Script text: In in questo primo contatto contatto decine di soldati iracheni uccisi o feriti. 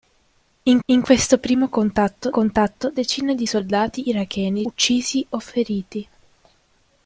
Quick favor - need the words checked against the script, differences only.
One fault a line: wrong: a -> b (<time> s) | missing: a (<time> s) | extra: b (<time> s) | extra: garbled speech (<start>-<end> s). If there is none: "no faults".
no faults